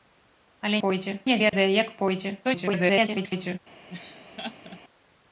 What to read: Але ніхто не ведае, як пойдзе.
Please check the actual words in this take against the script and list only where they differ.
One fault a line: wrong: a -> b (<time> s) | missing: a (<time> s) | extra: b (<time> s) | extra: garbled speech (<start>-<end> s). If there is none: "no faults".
wrong: ніхто -> пойдзе (0.9 s)
extra: garbled speech (2.4-3.6 s)